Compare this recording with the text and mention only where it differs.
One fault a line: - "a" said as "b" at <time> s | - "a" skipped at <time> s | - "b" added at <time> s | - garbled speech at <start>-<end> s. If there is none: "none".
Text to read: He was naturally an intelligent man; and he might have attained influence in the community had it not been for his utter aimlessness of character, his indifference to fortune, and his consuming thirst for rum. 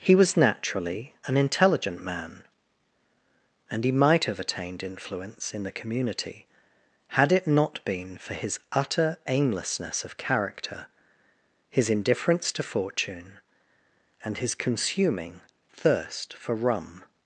none